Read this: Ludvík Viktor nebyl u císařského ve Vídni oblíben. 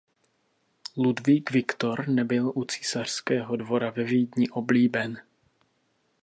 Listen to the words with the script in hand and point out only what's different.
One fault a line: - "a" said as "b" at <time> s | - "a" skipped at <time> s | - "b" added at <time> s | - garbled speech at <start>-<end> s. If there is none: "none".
- "dvora" added at 3.5 s